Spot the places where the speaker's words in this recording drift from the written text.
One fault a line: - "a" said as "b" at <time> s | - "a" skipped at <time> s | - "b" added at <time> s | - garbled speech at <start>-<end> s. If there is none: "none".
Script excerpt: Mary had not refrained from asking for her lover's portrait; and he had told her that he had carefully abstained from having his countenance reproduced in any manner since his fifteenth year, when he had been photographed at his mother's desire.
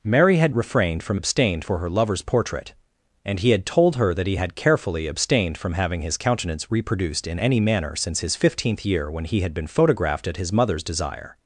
- "not" skipped at 0.6 s
- "asking" said as "abstained" at 1.1 s